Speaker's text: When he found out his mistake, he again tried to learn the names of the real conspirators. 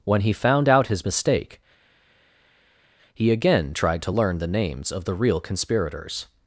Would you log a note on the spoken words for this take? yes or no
no